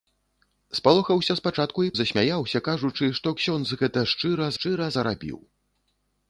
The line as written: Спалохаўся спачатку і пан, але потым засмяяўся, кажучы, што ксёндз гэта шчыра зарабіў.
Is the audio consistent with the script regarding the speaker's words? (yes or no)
no